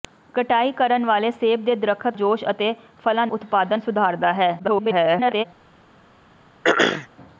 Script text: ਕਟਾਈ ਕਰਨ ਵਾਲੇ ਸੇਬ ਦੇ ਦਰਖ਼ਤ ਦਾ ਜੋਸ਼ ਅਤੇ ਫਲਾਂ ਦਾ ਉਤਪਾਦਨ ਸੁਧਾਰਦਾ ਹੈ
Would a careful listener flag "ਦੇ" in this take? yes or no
no